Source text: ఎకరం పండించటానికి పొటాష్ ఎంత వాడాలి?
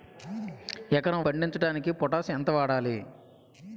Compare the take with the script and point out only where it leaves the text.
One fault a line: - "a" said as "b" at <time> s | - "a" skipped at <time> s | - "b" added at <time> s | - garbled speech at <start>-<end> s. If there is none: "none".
none